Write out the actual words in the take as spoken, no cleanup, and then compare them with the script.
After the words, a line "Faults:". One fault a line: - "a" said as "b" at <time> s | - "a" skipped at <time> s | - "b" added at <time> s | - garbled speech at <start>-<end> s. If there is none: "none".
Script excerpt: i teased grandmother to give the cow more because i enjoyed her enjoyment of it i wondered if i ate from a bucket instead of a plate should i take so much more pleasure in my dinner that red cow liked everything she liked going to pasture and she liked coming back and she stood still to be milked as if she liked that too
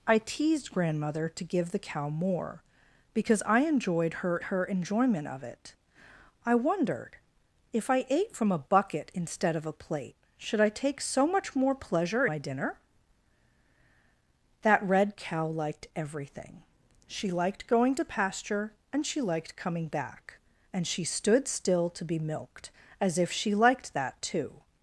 i teased grandmother to give the cow more because i enjoyed her her enjoyment of it i wondered if i ate from a bucket instead of a plate should i take so much more pleasure my dinner that red cow liked everything she liked going to pasture and she liked coming back and she stood still to be milked as if she liked that too
Faults:
- "her" added at 4.4 s
- "in" skipped at 12.3 s